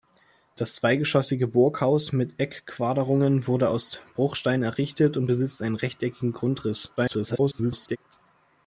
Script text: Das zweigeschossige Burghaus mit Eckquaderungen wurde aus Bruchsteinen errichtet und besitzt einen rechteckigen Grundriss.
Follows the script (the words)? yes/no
no